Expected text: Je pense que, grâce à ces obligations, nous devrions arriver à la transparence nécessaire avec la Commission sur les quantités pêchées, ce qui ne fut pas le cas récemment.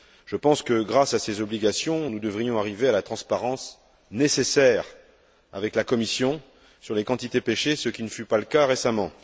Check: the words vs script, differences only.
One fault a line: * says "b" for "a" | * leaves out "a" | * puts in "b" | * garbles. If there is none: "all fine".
all fine